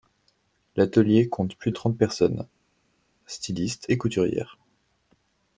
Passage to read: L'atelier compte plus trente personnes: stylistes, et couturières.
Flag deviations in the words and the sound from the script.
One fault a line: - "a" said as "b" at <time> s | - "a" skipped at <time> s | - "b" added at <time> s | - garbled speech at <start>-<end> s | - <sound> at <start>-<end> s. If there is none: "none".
none